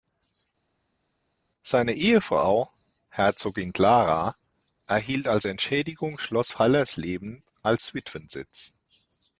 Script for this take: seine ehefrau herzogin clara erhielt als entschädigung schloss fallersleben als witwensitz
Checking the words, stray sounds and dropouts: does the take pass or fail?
pass